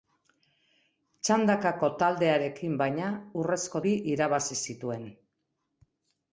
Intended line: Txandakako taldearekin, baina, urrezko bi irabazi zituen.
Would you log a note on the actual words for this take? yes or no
no